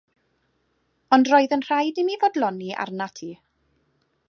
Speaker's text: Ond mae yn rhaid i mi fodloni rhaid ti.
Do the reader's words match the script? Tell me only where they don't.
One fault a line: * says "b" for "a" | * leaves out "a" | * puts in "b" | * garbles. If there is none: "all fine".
* says "roedd" for "mae"
* says "arnat" for "rhaid"